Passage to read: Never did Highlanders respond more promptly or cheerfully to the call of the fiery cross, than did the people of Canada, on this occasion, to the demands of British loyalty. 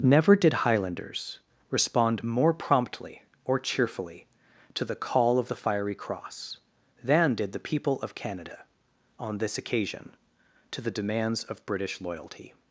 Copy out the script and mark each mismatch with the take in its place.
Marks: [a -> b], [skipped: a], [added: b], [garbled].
Never did Highlanders respond more promptly or cheerfully to the call of the fiery cross, than did the people of Canada, on this occasion, to the demands of British loyalty.